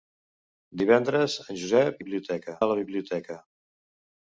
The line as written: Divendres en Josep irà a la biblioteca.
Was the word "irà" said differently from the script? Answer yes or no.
yes